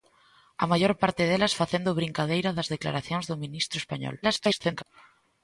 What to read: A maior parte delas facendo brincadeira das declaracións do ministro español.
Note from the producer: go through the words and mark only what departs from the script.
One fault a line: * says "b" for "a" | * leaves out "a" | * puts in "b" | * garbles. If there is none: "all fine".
* garbles